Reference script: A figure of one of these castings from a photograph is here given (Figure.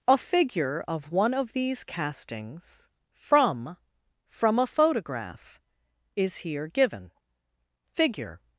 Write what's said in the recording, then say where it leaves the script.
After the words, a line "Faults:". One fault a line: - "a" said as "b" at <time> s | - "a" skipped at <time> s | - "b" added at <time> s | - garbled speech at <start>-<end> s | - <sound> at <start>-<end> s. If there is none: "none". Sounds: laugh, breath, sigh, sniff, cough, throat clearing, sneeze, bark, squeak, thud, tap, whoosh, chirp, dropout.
A figure of one of these castings from from a photograph is here given (Figure.
Faults:
- "from" added at 4.3 s